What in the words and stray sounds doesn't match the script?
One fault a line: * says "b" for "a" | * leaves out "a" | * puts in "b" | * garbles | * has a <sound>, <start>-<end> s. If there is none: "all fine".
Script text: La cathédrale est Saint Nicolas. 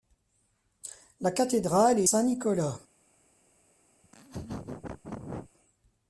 * has a laugh, 4.0-5.5 s